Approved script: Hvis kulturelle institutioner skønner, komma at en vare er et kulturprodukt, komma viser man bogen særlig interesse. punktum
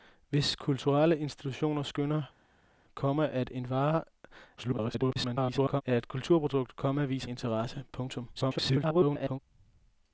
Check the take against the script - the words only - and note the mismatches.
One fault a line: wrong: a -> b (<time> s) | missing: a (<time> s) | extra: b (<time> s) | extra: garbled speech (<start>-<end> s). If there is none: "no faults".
extra: garbled speech (4.6-5.8 s)
missing: man bogen særlig (7.3 s)
extra: garbled speech (8.3-9.4 s)